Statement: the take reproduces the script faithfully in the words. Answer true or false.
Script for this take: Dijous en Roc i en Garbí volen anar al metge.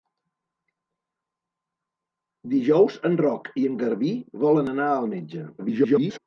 false